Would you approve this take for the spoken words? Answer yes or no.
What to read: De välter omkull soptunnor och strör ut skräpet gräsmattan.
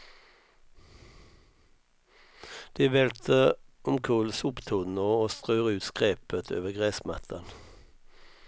no